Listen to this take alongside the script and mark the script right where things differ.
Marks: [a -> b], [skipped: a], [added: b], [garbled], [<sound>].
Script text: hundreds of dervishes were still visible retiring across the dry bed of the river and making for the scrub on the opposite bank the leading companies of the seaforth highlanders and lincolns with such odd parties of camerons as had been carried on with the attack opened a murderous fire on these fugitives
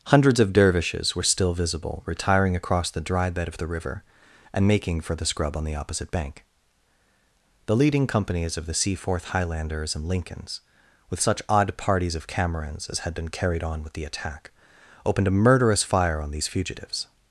hundreds of dervishes were still visible retiring across the dry bed of the river and making for the scrub on the opposite bank the leading companies of the seaforth highlanders and lincolns with such odd parties of camerons as had been carried on with the attack opened a murderous fire on these fugitives